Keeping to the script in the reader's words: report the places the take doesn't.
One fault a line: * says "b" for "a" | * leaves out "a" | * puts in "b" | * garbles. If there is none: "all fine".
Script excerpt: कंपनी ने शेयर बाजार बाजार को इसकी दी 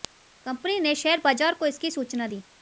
* leaves out "बाजार"
* puts in "सूचना"